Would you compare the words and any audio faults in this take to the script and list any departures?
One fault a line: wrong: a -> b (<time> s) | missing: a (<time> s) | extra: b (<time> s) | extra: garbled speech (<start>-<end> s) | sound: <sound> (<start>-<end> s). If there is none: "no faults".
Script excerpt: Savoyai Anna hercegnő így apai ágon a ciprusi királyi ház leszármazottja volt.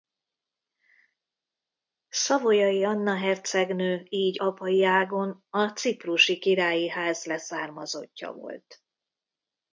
no faults